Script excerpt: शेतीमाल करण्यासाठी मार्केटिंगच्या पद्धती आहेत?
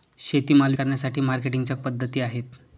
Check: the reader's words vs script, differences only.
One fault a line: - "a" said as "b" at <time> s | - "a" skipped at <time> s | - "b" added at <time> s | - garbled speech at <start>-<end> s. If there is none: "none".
none